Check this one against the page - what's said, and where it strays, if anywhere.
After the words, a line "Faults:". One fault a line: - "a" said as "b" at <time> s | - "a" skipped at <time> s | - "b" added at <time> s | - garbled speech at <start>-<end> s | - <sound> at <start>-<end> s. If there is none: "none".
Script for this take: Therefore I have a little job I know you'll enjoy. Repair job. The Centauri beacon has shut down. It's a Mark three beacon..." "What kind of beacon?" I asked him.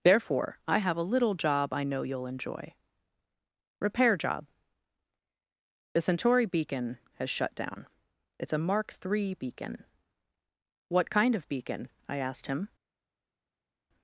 Therefore I have a little job I know you'll enjoy. Repair job. The Centauri beacon has shut down. It's a Mark three beacon..." "What kind of beacon?" I asked him.
Faults:
none